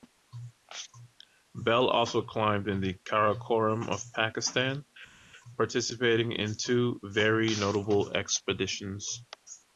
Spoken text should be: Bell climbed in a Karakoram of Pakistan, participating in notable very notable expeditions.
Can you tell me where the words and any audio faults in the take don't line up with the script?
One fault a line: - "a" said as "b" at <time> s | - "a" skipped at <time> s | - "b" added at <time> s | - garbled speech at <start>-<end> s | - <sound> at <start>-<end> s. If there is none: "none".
- "also" added at 1.9 s
- "a" said as "the" at 2.8 s
- "notable" said as "two" at 6.5 s